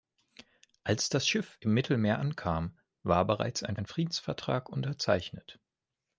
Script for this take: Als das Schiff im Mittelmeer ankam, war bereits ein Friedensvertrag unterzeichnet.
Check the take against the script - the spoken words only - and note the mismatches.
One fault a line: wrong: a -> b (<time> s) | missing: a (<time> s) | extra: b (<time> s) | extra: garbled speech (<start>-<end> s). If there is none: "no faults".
extra: ein (3.7 s)